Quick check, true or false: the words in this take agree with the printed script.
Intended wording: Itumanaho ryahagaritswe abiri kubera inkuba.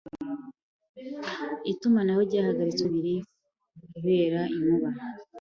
true